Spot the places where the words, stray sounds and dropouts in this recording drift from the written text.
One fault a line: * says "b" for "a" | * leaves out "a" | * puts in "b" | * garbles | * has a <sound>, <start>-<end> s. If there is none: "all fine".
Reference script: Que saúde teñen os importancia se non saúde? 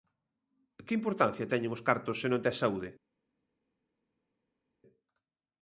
* says "importancia" for "saúde"
* says "cartos" for "importancia"
* puts in "tes"